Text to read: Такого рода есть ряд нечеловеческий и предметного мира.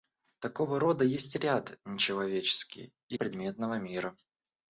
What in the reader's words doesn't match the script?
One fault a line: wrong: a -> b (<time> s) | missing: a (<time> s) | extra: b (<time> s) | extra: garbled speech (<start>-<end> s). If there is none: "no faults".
no faults